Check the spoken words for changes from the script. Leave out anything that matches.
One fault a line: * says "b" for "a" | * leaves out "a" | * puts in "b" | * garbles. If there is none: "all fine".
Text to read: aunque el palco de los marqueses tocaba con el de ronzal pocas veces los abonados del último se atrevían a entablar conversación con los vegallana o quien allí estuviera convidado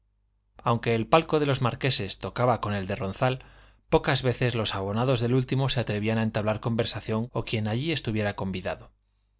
* leaves out "con los vegallana"